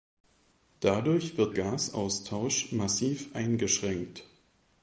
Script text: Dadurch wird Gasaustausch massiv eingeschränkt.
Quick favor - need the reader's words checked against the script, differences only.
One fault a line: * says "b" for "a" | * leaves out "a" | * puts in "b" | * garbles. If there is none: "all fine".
all fine